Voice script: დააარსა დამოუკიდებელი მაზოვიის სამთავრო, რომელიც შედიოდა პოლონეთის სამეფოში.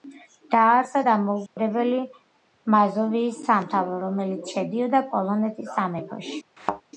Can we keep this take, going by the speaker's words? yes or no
yes